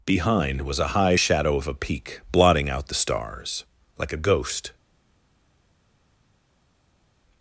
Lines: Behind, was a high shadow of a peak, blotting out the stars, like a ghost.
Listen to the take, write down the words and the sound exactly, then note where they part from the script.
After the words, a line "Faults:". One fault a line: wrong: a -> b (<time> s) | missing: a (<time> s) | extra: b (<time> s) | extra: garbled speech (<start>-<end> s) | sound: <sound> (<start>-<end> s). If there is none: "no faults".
Behind, was a high shadow of a peak, blotting out the stars, like a ghost.
Faults:
no faults